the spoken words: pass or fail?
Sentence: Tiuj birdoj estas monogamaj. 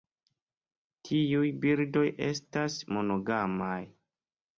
pass